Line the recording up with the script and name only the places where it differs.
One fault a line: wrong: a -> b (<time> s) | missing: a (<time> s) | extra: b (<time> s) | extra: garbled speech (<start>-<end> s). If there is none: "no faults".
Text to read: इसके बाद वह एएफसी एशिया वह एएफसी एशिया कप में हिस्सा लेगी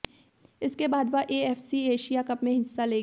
missing: वह एएफसी एशिया (2.2 s)